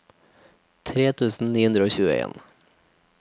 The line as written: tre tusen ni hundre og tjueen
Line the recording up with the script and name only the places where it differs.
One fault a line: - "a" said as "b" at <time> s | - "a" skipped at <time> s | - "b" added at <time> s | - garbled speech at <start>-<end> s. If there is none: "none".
none